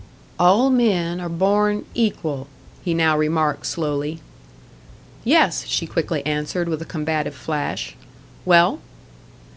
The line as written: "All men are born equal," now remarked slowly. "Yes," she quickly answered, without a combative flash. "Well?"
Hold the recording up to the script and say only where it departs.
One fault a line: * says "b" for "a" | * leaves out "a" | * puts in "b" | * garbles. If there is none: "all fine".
* puts in "he"
* says "with" for "without"